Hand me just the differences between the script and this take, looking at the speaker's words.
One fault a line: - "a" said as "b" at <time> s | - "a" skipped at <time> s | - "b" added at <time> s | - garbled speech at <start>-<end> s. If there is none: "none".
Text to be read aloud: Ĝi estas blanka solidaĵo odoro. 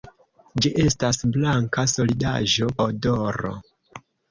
none